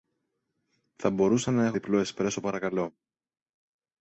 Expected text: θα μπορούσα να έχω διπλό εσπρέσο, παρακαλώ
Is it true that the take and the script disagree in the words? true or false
false